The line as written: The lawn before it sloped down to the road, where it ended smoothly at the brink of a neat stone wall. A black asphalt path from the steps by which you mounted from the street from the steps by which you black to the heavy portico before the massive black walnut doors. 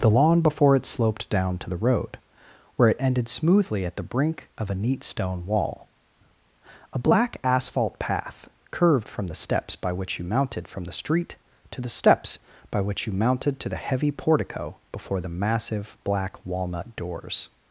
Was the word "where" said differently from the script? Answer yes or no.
no